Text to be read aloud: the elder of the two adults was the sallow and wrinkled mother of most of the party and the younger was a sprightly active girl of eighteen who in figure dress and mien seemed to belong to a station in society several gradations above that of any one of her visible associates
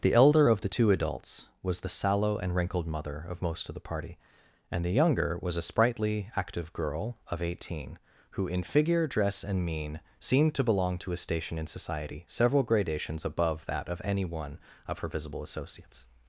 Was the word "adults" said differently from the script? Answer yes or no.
no